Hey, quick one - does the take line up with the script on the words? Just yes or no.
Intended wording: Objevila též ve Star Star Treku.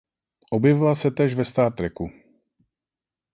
no